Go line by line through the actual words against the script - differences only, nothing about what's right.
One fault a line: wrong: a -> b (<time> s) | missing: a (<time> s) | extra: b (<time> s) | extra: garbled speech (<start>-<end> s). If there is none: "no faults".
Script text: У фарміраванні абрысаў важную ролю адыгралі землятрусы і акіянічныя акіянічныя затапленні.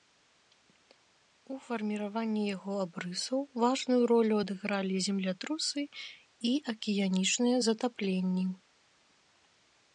extra: яго (2.5 s)
missing: акіянічныя (7.6 s)